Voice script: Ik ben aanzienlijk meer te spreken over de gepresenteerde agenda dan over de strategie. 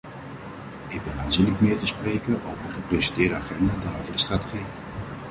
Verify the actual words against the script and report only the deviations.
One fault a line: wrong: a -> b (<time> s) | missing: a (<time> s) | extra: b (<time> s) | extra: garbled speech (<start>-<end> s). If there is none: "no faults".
no faults